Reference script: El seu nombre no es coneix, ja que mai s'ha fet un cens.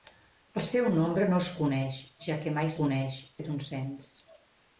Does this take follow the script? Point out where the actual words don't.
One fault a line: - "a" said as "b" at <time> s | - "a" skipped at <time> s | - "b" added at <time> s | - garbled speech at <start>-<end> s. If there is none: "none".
- "s'ha" said as "coneix" at 2.8 s